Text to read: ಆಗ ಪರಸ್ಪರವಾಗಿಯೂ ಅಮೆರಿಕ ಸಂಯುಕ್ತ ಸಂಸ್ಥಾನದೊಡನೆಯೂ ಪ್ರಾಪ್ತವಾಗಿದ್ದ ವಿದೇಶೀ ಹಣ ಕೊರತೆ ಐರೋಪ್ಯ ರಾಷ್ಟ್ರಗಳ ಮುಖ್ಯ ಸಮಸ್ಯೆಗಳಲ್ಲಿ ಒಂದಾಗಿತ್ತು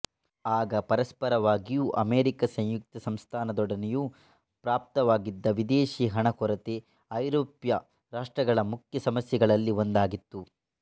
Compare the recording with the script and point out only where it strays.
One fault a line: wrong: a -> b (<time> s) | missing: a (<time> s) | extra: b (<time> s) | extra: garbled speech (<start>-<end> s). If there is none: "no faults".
no faults